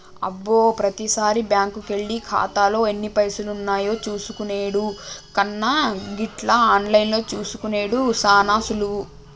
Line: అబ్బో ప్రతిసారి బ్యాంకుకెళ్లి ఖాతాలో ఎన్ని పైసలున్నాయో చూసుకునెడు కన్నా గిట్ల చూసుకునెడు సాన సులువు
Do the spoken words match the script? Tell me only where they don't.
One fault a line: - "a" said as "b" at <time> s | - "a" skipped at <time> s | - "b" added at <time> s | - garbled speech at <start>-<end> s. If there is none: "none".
- "ఆన్లైన్లో" added at 6.7 s